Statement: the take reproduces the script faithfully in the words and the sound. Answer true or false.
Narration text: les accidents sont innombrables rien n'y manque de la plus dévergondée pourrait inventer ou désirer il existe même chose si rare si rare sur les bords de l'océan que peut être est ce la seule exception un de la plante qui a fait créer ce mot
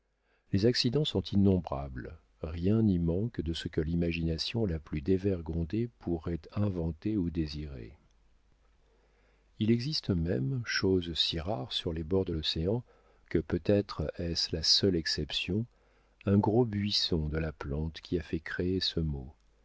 false